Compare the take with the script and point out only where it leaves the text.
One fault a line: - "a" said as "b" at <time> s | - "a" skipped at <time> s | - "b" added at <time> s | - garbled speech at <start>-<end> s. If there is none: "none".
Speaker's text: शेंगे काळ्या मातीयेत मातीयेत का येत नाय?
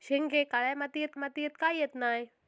none